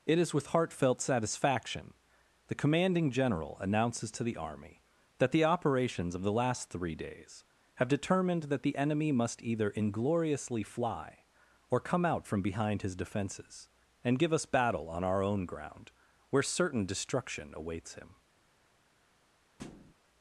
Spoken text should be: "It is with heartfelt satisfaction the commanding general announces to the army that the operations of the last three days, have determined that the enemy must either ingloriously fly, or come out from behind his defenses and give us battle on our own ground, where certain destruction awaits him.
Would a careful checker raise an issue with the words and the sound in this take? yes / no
yes